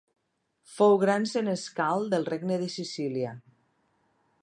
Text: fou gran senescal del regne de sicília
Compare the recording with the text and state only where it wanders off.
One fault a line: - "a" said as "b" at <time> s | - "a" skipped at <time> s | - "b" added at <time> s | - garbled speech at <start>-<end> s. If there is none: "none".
none